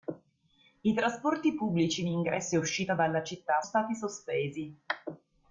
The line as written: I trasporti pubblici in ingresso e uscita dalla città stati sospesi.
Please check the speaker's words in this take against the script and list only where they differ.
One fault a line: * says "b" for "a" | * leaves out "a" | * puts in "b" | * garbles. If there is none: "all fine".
all fine